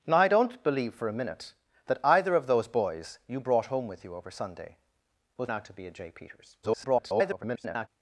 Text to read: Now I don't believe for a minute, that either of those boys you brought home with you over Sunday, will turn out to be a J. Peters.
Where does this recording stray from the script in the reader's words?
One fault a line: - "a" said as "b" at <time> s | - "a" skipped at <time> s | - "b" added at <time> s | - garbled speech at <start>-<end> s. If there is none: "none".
- "turn" skipped at 5.5 s
- garbled speech at 6.6-7.9 s